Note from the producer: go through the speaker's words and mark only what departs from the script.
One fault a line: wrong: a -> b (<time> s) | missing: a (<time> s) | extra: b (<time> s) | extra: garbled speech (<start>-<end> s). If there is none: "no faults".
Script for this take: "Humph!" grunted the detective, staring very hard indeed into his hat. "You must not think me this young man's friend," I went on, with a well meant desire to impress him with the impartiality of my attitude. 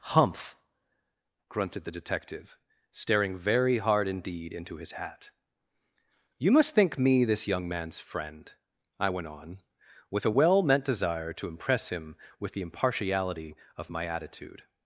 missing: not (6.7 s)